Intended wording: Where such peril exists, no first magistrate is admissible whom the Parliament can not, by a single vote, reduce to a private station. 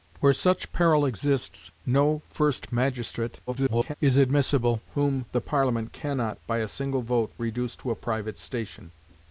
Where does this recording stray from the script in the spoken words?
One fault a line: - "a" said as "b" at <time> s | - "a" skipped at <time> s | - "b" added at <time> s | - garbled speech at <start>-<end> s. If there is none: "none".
- garbled speech at 3.5-3.9 s